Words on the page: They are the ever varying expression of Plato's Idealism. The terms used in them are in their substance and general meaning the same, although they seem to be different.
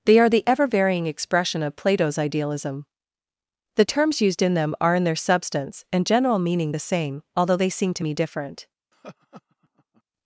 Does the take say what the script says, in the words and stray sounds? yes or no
no